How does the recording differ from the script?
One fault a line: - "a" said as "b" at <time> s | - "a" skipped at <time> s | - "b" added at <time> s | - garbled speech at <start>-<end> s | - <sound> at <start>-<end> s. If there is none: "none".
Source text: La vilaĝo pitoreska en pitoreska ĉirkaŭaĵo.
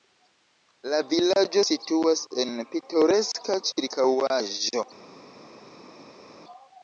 - "pitoreska" said as "situas" at 1.7 s